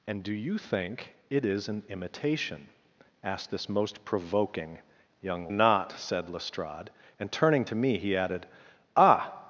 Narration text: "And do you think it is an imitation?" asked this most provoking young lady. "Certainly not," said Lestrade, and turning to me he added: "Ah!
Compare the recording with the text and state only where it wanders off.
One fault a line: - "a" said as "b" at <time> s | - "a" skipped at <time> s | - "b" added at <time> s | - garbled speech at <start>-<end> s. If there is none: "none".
- "lady Certainly" skipped at 5.5 s